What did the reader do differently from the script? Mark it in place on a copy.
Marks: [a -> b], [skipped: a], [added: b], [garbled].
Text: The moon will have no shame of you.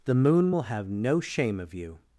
The moon will have no shame of you.